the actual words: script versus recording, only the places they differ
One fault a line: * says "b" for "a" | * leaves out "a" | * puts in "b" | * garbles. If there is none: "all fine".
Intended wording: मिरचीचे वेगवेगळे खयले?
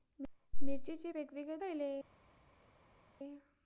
all fine